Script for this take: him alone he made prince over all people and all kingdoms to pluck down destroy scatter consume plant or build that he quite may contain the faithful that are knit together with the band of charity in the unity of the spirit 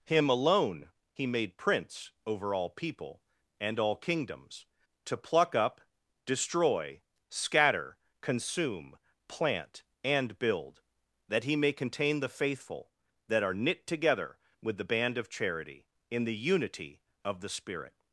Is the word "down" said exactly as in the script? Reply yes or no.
no